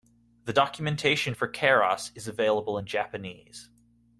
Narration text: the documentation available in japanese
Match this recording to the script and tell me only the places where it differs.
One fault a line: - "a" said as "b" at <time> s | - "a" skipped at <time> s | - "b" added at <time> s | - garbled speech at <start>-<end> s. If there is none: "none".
- "for keras is" added at 1.3 s